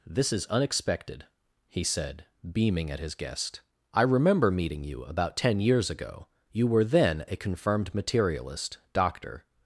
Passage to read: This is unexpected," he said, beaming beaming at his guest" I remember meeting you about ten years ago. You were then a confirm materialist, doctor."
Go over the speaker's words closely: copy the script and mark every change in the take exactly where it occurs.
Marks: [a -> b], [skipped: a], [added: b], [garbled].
This is unexpected," he said, beaming [skipped: beaming] at his guest" I remember meeting you about ten years ago. You were then a [confirm -> confirmed] materialist, doctor."